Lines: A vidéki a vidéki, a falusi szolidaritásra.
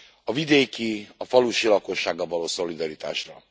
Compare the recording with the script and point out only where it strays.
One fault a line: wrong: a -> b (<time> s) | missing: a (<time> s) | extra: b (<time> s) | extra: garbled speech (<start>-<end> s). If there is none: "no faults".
wrong: vidéki a falusi -> falusi lakossággal való (1.2 s)